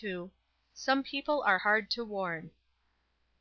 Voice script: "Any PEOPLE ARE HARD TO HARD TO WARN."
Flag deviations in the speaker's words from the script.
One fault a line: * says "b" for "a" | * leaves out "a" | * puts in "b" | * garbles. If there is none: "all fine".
* says "SOME" for "Any"
* leaves out "HARD TO"